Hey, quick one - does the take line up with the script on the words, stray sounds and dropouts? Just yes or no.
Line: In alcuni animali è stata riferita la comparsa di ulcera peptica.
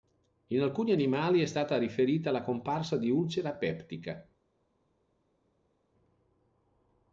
yes